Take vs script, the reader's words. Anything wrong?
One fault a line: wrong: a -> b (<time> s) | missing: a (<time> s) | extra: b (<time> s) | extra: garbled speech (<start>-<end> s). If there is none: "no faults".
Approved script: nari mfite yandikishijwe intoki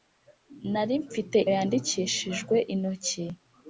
no faults